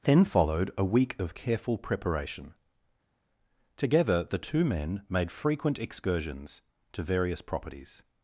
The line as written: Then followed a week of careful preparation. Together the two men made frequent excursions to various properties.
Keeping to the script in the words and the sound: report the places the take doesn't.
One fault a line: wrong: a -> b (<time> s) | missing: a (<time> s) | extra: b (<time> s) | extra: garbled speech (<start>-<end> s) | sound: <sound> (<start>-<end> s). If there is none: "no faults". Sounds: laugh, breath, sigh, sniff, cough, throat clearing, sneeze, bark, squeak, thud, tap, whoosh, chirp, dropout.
no faults